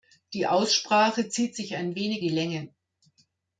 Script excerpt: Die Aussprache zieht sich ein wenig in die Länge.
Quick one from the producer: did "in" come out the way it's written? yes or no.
no